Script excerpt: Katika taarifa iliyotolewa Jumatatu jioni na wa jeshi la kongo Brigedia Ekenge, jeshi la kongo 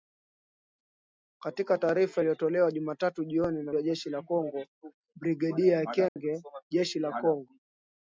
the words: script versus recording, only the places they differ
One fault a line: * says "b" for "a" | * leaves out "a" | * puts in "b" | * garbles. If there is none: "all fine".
all fine